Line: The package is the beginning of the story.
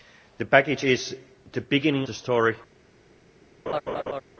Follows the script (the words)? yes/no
no